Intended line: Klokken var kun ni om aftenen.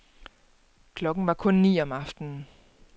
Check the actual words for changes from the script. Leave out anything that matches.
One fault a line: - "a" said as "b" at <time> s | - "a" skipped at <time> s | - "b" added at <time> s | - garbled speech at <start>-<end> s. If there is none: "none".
none